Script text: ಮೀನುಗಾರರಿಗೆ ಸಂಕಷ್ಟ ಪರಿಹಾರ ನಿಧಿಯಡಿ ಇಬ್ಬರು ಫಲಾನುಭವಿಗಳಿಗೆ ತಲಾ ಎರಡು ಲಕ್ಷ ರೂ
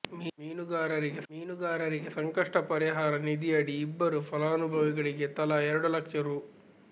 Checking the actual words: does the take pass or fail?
fail